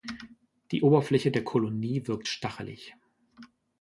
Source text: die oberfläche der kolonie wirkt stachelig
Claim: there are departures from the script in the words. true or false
false